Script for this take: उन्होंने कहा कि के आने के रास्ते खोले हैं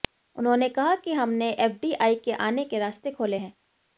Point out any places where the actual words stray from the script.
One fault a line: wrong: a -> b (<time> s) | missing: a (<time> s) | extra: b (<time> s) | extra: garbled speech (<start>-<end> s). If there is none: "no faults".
extra: हमने एफडीआई (1.1 s)